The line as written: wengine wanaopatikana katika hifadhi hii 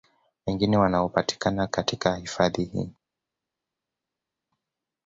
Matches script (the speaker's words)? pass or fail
pass